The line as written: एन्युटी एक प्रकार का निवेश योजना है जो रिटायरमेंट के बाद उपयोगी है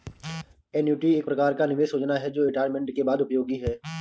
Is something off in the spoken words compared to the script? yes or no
no